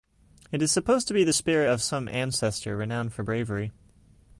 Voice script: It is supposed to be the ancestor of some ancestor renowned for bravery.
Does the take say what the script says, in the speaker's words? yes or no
no